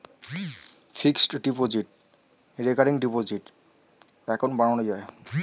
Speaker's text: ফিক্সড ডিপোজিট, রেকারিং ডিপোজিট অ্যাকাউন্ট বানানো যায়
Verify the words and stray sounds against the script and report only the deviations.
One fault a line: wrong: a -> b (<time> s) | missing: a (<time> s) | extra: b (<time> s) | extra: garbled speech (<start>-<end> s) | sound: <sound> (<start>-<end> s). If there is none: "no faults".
no faults